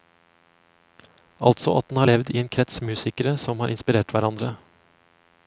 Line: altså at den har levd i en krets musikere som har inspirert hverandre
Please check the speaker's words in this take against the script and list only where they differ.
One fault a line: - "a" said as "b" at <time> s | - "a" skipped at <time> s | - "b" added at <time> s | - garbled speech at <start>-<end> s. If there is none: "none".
none